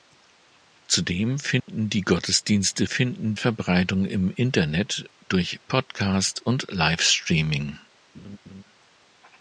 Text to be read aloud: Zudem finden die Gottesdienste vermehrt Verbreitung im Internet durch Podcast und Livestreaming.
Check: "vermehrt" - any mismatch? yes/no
yes